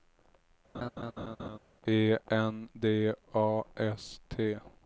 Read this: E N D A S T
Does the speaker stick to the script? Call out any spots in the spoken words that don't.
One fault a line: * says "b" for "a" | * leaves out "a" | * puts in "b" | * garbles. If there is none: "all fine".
all fine